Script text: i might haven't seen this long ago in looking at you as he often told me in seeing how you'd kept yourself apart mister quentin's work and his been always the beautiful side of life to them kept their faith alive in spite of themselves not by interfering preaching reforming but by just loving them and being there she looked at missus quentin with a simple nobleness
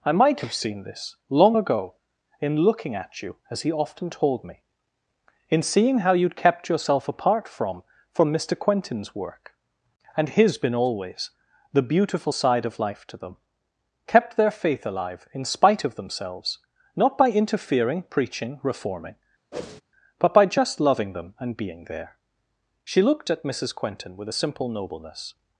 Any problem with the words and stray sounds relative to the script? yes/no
yes